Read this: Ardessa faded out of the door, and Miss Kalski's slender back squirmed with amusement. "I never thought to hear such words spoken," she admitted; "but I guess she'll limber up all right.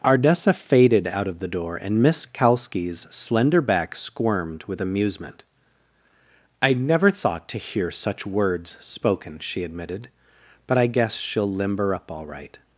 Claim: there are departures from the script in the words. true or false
false